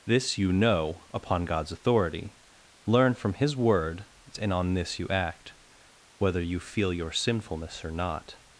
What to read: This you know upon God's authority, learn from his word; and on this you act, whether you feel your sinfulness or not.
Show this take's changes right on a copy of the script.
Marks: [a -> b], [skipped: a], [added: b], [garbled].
This you know upon God's authority, learn from his word; and on this you act, whether you feel your sinfulness or not.